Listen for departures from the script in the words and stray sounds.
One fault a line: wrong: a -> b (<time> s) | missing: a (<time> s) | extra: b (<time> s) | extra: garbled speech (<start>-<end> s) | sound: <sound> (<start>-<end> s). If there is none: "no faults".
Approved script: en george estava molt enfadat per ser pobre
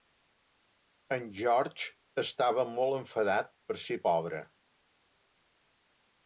no faults